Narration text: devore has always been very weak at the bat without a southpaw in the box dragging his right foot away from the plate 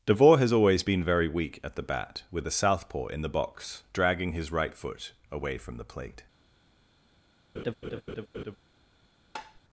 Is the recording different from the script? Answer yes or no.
yes